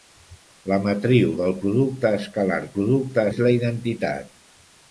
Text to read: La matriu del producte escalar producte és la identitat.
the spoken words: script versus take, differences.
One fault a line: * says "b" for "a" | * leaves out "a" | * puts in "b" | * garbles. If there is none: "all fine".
all fine